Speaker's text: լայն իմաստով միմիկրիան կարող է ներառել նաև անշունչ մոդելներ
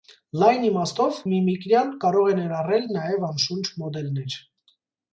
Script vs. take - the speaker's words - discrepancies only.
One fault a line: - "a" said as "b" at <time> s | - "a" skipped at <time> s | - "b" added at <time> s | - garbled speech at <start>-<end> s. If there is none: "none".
none